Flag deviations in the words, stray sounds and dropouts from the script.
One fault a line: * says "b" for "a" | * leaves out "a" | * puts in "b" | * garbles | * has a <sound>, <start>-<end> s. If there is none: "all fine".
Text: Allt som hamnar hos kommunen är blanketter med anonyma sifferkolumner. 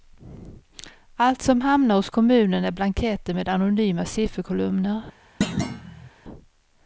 * has a thud, 5.4-6.1 s